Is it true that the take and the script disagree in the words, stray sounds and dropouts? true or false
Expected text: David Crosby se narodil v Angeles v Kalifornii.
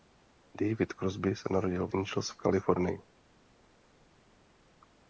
false